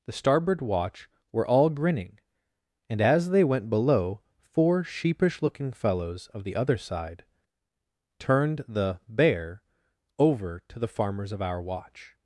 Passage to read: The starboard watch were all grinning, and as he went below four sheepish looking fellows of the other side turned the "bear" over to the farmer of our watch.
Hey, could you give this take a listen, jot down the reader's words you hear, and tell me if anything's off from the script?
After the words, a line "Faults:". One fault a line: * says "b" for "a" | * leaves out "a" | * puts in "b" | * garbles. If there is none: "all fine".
The starboard watch were all grinning, and as they went below four sheepish looking fellows of the other side turned the "bear" over to the farmers of our watch.
Faults:
* says "they" for "he"
* says "farmers" for "farmer"